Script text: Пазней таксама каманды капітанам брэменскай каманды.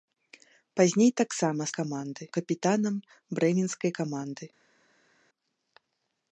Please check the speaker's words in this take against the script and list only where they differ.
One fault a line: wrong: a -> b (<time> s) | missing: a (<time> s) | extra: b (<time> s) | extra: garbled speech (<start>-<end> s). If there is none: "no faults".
no faults